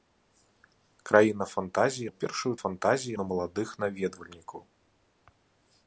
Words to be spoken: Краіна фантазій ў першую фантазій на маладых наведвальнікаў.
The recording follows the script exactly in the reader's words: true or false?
true